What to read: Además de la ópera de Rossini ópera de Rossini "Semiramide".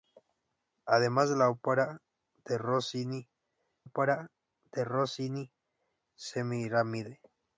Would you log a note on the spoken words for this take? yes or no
no